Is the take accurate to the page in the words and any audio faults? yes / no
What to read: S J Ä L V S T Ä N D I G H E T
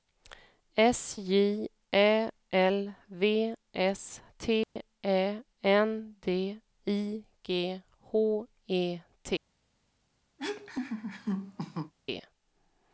no